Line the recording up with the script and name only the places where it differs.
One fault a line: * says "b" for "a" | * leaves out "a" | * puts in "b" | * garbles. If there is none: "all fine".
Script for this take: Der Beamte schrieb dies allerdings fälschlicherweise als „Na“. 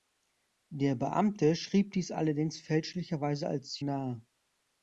all fine